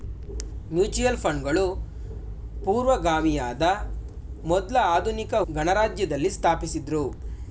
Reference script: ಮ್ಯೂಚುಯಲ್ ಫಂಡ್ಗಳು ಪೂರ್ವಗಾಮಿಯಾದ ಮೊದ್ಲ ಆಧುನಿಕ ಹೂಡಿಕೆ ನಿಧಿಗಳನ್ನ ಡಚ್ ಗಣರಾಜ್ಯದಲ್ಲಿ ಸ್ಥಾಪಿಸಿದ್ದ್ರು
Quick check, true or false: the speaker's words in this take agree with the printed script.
false